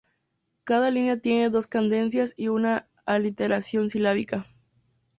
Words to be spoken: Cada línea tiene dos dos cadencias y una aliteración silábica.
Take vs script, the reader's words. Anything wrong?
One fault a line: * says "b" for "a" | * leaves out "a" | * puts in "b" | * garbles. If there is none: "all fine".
* leaves out "dos"